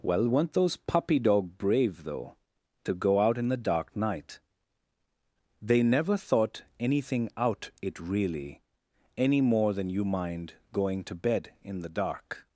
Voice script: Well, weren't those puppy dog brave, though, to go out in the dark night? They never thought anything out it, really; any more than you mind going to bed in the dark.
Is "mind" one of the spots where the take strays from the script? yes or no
no